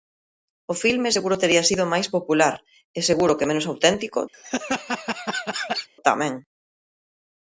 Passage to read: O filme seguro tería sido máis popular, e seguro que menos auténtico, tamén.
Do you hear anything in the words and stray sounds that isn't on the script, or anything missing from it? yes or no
yes